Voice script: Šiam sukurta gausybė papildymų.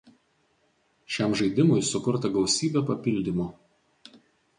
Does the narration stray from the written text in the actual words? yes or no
yes